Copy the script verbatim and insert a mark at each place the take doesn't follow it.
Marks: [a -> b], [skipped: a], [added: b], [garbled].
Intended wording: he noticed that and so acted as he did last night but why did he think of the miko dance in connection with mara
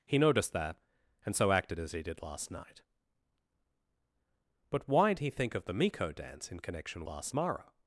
he noticed that and so acted as he did last night but why [skipped: did] he think of the miko dance in connection [with -> last] mara